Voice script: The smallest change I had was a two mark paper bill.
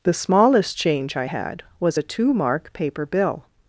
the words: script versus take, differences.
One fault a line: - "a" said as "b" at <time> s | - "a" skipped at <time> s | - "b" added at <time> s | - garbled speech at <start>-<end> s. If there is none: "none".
none